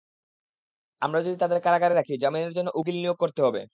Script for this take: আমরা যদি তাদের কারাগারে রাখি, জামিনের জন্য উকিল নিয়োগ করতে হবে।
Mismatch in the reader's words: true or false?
false